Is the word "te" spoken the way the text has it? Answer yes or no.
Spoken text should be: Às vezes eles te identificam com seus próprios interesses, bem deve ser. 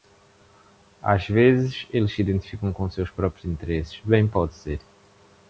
no